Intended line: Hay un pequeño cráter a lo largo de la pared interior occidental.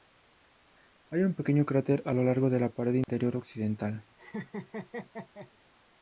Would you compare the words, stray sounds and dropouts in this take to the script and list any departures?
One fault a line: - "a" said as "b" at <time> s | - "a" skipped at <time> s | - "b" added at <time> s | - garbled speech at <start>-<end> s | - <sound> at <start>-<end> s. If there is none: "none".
- dropout at 3.0-3.1 s
- laugh at 4.2-5.5 s